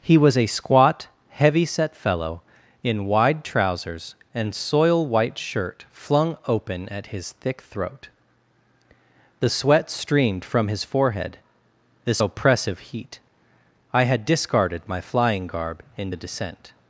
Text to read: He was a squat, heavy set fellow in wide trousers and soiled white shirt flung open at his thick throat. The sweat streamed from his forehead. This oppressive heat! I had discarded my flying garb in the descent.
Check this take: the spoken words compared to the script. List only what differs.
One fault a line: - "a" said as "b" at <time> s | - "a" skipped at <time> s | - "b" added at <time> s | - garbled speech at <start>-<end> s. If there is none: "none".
- "soiled" said as "soil" at 4.5 s